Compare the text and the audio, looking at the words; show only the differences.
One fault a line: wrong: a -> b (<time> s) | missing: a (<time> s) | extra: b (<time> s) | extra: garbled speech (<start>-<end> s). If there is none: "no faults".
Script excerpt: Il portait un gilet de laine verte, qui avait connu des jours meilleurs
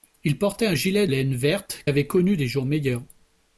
missing: de (1.1 s)
missing: qui (1.9 s)